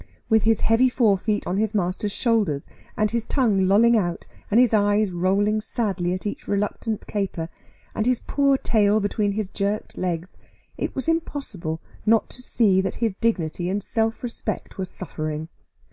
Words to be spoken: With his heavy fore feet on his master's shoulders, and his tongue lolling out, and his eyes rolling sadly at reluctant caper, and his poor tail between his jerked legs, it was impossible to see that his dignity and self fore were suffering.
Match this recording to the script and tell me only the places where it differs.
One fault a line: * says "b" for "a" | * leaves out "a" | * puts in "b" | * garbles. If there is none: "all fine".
* puts in "each"
* puts in "not"
* says "respect" for "fore"